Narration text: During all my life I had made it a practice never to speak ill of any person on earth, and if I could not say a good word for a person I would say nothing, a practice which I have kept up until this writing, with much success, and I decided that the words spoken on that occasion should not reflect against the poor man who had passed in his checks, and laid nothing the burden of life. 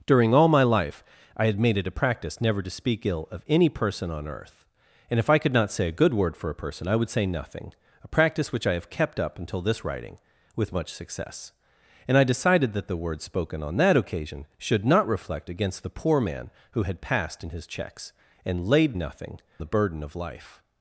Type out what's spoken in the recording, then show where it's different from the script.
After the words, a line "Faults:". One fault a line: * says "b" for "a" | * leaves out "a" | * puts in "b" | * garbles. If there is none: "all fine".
During all my life I had made it a practice never to speak ill of any person on earth, and if I could not say a good word for a person I would say nothing, a practice which I have kept up until this writing, with much success, and I decided that the words spoken on that occasion should not reflect against the poor man who had passed in his checks, and laid nothing the burden of life.
Faults:
all fine